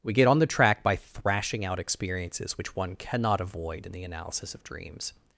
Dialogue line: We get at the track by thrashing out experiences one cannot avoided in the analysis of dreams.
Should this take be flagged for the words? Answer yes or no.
yes